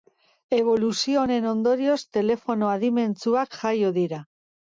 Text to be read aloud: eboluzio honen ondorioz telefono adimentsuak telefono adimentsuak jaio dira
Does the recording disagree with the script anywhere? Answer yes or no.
yes